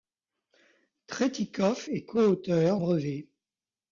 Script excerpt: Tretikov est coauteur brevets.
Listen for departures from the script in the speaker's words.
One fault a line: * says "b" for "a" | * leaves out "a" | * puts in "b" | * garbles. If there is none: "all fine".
all fine